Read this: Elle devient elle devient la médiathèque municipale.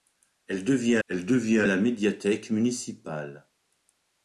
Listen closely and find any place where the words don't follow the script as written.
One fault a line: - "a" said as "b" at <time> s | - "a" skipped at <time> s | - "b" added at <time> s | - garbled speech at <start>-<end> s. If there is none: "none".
none